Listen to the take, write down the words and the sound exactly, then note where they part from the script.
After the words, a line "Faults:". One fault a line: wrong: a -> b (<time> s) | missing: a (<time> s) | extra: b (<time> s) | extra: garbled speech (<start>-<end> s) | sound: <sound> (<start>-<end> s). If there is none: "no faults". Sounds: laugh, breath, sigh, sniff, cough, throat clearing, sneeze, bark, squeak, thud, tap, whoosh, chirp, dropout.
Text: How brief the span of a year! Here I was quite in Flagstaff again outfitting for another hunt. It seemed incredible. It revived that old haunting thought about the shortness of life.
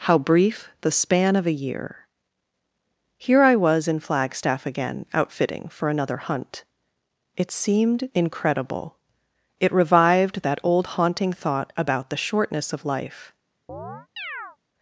How brief the span of a year! Here I was in Flagstaff again outfitting for another hunt. It seemed incredible. It revived that old haunting thought about the shortness of life.
Faults:
missing: quite (3.9 s)
sound: chirp (13.7-14.6 s)